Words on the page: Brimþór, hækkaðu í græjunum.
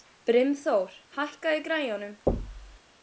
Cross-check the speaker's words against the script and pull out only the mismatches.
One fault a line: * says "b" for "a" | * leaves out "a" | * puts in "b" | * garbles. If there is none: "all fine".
all fine